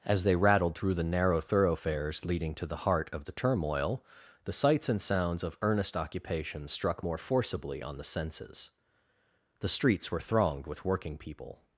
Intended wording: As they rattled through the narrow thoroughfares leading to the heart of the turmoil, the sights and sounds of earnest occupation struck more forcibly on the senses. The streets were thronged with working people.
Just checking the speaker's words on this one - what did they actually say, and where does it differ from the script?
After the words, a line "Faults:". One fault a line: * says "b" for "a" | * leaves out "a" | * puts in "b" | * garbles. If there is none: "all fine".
As they rattled through the narrow thoroughfares leading to the heart of the turmoil, the sights and sounds of earnest occupation struck more forcibly on the senses. The streets were thronged with working people.
Faults:
all fine